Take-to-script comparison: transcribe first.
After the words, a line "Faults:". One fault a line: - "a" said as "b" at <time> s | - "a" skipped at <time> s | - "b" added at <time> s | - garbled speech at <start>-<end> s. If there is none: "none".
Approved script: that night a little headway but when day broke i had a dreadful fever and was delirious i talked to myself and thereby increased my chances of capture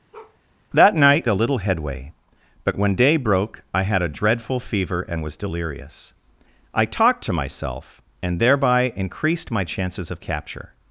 that night a little headway but when day broke i had a dreadful fever and was delirious i talked to myself and thereby increased my chances of capture
Faults:
none